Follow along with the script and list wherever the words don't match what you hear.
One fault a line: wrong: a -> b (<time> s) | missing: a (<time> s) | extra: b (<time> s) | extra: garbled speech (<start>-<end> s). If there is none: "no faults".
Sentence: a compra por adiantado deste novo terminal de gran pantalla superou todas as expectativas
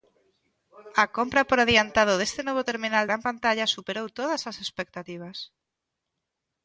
missing: de (3.0 s)